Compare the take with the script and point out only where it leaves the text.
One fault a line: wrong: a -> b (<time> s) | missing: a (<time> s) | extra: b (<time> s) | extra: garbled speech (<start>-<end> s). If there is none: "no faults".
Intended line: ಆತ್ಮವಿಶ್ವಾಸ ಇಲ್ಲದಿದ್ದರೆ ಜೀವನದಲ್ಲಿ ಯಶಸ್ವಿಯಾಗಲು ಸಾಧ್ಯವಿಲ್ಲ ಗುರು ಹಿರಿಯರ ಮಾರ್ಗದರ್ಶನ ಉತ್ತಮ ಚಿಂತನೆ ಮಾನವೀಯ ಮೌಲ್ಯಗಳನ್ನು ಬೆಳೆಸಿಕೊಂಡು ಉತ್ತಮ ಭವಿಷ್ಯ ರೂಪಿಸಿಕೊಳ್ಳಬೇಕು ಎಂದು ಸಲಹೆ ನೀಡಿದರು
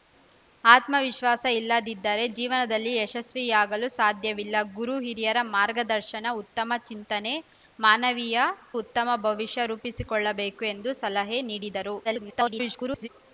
missing: ಮೌಲ್ಯಗಳನ್ನು ಬೆಳೆಸಿಕೊಂಡು (8.5 s)
extra: garbled speech (12.0-13.1 s)